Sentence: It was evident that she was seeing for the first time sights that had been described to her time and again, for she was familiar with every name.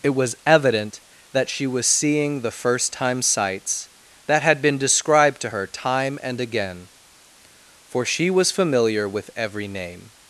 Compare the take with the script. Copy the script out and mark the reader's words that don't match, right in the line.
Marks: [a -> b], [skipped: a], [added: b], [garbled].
It was evident that she was seeing [skipped: for] the first time sights that had been described to her time and again, for she was familiar with every name.